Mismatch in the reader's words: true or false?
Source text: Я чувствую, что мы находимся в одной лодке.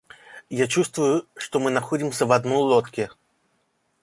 false